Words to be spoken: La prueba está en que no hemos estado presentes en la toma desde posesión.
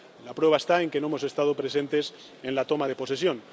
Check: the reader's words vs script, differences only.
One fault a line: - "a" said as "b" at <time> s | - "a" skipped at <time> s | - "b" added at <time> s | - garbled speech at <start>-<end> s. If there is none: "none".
- "desde" said as "de" at 2.9 s